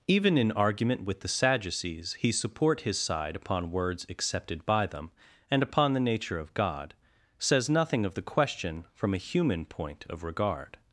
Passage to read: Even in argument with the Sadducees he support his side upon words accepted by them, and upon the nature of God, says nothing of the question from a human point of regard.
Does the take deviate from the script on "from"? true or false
false